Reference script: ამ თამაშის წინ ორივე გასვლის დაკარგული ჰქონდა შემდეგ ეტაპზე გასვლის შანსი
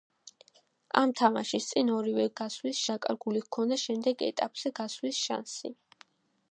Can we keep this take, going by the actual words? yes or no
yes